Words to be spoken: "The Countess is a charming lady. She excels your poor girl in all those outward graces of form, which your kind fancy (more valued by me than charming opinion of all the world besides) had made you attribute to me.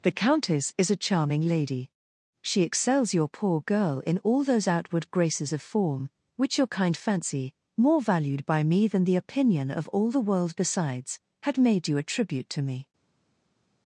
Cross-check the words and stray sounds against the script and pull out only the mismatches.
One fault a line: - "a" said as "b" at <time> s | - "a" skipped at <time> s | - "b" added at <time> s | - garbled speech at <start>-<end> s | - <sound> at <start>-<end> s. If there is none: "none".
- "charming" said as "the" at 9.0 s